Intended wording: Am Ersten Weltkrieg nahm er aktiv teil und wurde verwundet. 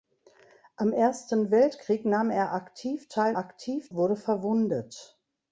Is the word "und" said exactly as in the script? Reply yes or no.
no